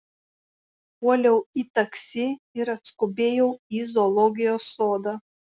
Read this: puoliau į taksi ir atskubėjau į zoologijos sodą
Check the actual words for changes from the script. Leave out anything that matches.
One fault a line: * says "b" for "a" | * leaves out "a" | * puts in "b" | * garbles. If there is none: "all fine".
all fine